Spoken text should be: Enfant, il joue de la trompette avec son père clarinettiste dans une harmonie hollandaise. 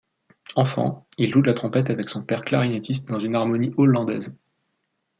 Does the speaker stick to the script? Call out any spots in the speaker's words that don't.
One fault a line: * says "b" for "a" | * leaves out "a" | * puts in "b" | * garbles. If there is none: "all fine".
all fine